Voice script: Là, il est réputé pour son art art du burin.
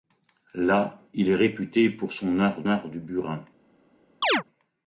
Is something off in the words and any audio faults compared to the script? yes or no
yes